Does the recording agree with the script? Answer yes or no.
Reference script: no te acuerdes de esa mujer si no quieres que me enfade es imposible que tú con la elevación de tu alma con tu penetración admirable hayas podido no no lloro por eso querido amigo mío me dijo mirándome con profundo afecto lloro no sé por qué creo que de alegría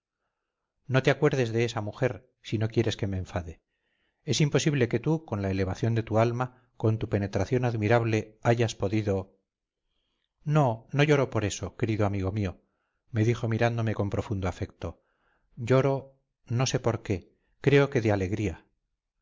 yes